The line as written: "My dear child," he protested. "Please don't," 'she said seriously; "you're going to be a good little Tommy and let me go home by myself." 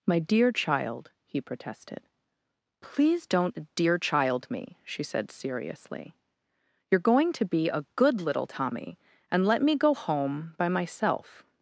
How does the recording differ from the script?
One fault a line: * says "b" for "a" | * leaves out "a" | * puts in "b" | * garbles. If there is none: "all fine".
* puts in "dear child me"